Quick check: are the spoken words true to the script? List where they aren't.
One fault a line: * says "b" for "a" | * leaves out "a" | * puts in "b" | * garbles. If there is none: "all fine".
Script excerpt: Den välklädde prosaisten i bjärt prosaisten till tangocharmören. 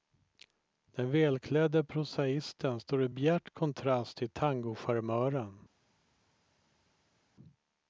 * puts in "står"
* says "kontrast" for "prosaisten"